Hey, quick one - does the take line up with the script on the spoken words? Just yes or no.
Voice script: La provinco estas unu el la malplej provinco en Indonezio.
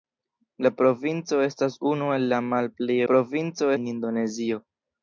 yes